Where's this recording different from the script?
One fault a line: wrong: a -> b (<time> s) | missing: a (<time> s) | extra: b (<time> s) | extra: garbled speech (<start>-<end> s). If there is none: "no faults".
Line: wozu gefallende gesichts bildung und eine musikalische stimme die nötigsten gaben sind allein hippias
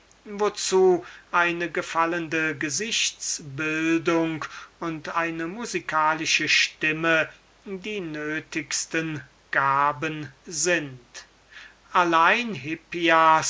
extra: eine (1.3 s)